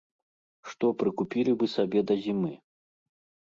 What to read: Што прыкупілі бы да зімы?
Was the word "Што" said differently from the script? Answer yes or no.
no